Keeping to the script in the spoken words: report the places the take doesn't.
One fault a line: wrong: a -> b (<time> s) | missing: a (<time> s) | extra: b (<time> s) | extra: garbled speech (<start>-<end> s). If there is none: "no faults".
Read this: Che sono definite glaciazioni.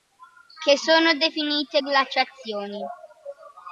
no faults